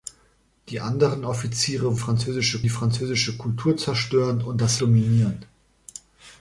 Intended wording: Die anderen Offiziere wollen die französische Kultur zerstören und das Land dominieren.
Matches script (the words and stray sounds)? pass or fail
fail